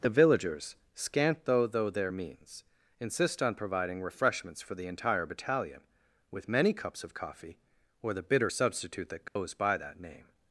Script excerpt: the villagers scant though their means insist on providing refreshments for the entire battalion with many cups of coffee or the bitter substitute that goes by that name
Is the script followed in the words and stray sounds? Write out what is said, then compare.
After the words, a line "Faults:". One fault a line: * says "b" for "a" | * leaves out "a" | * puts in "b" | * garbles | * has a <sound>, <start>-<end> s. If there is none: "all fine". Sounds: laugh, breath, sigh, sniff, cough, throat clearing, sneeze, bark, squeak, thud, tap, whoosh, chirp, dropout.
the villagers scant though though their means insist on providing refreshments for the entire battalion with many cups of coffee or the bitter substitute that goes by that name
Faults:
* puts in "though"
* has a dropout, 9.3-9.4 s